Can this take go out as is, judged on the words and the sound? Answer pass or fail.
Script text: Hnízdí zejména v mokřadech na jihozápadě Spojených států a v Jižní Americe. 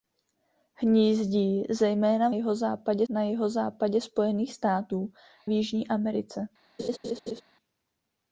fail